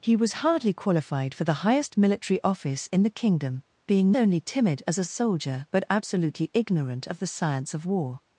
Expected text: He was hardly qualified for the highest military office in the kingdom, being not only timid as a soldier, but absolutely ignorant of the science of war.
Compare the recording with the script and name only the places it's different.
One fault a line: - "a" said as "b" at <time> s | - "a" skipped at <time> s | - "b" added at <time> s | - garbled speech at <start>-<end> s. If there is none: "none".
- "not" skipped at 4.1 s